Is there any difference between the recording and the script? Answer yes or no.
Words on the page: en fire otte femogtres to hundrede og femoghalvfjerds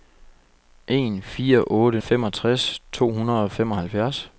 no